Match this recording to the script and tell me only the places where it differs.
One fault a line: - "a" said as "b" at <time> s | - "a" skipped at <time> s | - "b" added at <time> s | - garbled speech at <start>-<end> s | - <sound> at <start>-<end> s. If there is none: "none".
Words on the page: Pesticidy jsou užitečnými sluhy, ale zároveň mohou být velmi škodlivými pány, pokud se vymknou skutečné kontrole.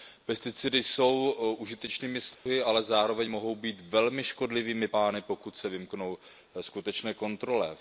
- dropout at 2.3-2.5 s